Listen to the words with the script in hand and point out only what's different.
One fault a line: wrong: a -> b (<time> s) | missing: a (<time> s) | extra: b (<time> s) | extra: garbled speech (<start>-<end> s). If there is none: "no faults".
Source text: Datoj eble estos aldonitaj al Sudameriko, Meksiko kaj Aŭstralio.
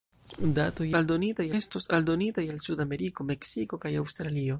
wrong: eble -> aldonitaj (1.0 s)